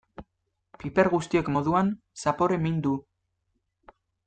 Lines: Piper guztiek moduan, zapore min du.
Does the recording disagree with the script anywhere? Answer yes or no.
no